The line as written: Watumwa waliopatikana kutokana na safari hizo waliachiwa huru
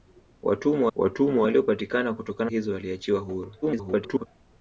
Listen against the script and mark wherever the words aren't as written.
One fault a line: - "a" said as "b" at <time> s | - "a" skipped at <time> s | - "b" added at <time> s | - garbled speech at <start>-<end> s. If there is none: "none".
- "watumwa" added at 0.9 s
- "na safari" skipped at 2.5 s
- garbled speech at 3.6-4.3 s